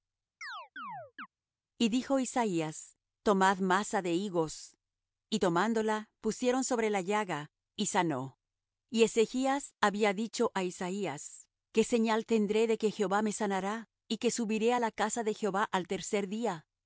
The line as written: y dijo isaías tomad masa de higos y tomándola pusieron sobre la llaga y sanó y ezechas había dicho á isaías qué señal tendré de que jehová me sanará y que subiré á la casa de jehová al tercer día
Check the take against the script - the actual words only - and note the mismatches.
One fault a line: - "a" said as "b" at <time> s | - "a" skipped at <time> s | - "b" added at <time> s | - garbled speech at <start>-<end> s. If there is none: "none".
none